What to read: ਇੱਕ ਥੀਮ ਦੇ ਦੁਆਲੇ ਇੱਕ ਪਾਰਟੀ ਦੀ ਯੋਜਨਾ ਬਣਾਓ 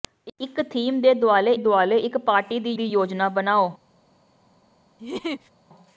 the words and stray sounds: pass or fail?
fail